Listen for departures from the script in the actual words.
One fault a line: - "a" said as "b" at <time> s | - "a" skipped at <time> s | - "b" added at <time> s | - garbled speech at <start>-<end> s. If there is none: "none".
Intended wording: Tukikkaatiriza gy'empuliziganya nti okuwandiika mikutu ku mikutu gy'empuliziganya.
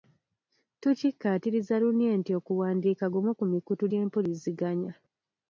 - "gy'empuliziganya" said as "lunye" at 1.8 s
- "mikutu" said as "gumu" at 3.1 s